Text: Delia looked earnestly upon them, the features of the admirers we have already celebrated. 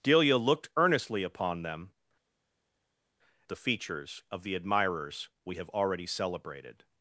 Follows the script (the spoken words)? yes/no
yes